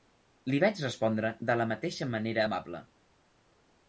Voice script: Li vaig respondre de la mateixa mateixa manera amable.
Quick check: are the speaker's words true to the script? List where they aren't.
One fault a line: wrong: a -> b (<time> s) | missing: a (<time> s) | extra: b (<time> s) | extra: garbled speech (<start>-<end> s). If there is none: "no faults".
missing: mateixa (2.1 s)